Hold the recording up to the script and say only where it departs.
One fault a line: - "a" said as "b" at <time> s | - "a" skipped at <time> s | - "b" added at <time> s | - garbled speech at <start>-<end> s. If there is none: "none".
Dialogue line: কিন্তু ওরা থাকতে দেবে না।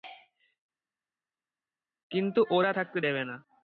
none